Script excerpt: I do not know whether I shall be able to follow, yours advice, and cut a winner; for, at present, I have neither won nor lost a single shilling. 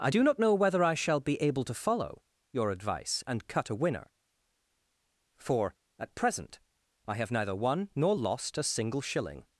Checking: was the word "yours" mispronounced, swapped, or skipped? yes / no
yes